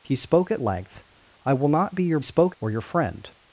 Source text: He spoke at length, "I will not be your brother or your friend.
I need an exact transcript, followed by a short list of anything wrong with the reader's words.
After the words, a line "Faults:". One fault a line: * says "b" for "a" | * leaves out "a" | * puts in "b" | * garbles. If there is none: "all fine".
He spoke at length, "I will not be your spoke or your friend.
Faults:
* says "spoke" for "brother"